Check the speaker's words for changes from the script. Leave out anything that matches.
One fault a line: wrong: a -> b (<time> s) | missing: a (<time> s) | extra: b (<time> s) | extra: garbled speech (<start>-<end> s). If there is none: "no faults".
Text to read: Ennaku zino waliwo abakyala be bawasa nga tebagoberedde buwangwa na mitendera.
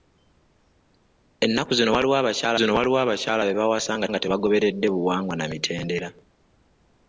extra: zino waliwo abakyala (2.6 s)
extra: nga (4.1 s)